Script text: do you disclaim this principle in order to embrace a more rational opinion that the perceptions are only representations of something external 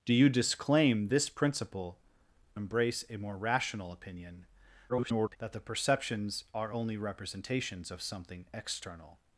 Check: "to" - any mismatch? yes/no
yes